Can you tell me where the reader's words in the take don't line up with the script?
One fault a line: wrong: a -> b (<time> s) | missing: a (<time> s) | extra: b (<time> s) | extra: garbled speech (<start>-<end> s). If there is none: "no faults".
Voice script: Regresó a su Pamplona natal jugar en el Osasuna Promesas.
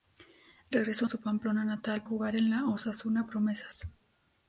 no faults